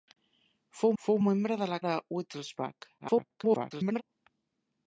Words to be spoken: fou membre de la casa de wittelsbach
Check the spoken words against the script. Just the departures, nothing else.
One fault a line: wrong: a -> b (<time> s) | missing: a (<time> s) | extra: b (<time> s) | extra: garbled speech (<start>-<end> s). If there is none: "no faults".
extra: fou (1.0 s)
missing: casa (1.8 s)
extra: garbled speech (3.0-4.0 s)